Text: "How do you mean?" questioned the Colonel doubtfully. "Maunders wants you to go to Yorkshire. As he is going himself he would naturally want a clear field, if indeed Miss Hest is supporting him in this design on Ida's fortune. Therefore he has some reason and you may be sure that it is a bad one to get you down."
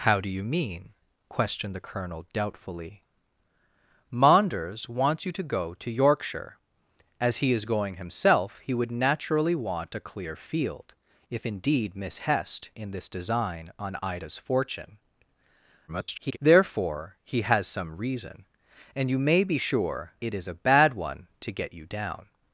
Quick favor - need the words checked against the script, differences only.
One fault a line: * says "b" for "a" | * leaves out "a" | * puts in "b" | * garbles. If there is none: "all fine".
* leaves out "is supporting him"
* garbles
* leaves out "that"